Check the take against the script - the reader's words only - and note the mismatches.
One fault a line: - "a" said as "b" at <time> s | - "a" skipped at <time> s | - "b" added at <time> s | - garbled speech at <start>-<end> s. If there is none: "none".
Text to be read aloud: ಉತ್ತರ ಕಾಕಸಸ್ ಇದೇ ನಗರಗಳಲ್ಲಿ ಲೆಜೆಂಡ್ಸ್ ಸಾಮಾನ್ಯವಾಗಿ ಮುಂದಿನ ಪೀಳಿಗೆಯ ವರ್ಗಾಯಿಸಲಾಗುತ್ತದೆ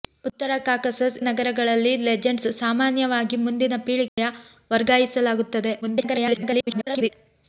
- "ಇದೇ" skipped at 1.2 s
- garbled speech at 5.8-7.1 s